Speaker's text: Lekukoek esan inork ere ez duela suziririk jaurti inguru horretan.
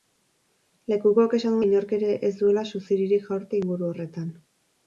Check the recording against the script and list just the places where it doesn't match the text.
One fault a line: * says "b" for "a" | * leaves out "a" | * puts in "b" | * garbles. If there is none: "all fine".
all fine